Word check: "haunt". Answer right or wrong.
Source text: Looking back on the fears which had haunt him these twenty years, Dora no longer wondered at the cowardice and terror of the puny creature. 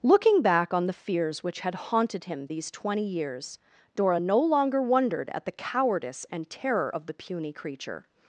wrong